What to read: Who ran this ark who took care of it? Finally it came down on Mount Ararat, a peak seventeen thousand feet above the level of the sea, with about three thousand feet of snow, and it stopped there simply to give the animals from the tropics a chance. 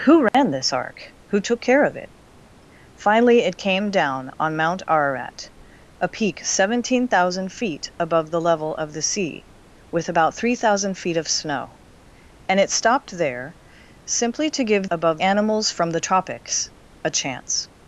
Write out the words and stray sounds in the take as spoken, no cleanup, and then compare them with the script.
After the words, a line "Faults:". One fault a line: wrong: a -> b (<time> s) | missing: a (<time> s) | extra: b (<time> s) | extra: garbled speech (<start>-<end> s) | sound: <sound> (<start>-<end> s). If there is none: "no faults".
Who ran this ark who took care of it? Finally it came down on Mount Ararat, a peak seventeen thousand feet above the level of the sea, with about three thousand feet of snow, and it stopped there simply to give above animals from the tropics a chance.
Faults:
sound: dropout (0.3-0.3 s)
wrong: the -> above (14.9 s)